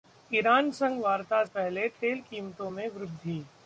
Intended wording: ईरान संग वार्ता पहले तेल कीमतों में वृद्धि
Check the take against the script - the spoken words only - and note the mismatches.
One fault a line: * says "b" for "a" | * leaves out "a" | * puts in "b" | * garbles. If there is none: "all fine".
all fine